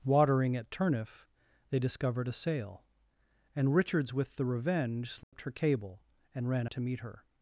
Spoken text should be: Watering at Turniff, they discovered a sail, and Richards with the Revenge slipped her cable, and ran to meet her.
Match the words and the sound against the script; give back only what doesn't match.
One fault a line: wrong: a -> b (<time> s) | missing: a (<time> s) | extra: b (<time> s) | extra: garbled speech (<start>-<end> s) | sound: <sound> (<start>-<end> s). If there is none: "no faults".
sound: dropout (5.2-5.3 s)